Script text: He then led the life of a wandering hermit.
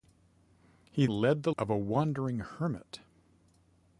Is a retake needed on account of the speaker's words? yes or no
yes